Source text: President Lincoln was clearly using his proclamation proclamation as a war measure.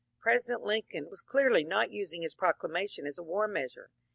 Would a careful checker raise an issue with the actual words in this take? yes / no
yes